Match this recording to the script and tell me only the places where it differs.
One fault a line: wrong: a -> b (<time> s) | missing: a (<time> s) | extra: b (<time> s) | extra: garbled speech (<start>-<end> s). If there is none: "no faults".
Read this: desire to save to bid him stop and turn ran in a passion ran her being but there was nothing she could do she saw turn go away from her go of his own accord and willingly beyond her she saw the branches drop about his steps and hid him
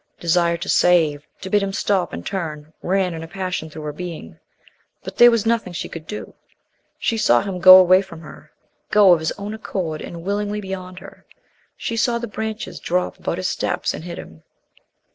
wrong: ran -> through (3.7 s)
wrong: turn -> him (7.4 s)